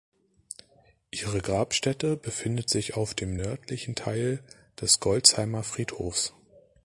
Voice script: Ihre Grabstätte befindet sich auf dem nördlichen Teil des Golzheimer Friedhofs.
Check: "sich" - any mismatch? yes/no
no